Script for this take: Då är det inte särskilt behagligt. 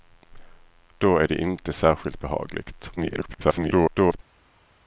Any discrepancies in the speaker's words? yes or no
yes